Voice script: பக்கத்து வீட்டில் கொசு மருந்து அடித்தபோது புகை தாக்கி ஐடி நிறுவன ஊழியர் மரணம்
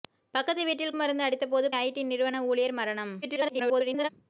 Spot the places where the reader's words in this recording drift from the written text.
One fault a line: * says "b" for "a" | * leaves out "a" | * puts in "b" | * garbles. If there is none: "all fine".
* leaves out "கொசு"
* leaves out "புகை தாக்கி"
* garbles